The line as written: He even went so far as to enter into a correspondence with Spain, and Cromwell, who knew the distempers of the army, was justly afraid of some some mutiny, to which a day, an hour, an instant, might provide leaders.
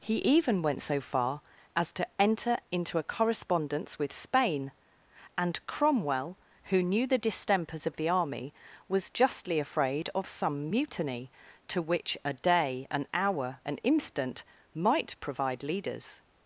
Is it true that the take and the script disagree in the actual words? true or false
true